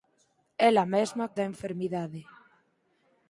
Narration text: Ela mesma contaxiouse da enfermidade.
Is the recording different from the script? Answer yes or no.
yes